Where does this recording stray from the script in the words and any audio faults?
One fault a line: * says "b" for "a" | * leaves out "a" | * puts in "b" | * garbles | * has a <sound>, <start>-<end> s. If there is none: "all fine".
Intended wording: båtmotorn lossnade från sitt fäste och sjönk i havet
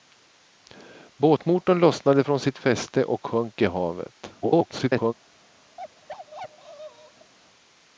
* garbles
* has a bark, 5.8-7.3 s